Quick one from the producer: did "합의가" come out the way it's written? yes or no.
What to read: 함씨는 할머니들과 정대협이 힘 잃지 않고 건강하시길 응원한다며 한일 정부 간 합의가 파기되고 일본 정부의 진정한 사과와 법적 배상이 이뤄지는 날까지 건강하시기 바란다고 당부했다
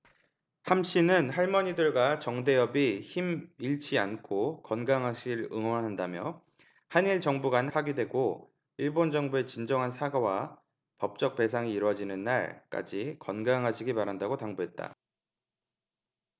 no